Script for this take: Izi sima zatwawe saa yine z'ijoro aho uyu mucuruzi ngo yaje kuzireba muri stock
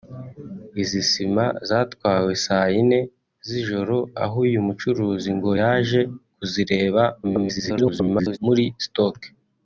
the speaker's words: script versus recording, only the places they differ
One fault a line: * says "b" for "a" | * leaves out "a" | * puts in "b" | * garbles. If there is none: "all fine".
* garbles